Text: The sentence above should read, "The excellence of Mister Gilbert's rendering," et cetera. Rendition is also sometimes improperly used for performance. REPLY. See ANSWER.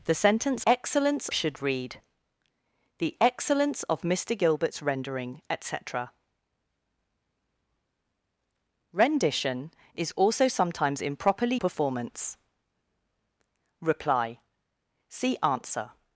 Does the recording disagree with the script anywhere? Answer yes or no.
yes